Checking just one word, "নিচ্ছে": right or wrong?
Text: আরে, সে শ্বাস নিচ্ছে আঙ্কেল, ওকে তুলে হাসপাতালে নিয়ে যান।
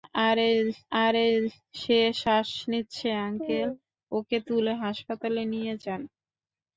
right